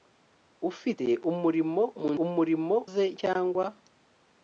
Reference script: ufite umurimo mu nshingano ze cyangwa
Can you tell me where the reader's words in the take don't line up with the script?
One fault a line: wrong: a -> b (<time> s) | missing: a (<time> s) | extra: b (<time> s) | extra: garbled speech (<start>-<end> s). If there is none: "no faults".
wrong: nshingano -> umurimo (2.2 s)